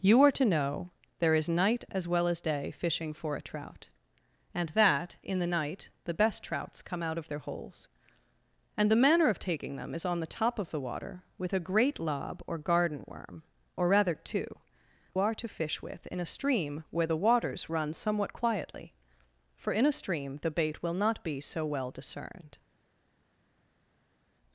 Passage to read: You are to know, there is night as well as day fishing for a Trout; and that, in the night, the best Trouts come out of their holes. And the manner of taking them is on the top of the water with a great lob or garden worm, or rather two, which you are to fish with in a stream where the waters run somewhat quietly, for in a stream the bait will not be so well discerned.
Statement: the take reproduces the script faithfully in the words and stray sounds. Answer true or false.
false